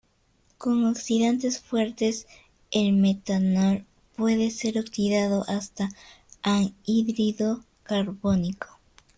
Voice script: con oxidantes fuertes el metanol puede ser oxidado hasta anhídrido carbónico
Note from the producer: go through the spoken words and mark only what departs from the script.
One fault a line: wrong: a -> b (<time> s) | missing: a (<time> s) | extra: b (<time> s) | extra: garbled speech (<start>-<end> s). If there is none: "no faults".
no faults